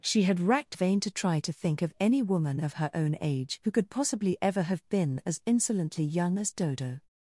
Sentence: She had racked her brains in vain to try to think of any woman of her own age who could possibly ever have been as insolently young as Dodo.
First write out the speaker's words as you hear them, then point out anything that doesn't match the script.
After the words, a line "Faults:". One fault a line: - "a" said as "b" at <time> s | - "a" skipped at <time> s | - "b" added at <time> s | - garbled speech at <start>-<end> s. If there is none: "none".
She had racked vain to try to think of any woman of her own age who could possibly ever have been as insolently young as Dodo.
Faults:
- "her brains in" skipped at 0.8 s